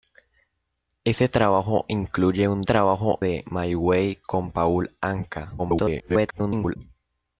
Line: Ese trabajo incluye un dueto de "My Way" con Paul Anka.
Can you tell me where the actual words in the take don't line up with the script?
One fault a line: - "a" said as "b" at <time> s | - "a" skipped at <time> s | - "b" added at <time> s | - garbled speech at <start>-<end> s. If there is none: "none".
- "dueto" said as "trabajo" at 2.6 s
- garbled speech at 5.6-6.8 s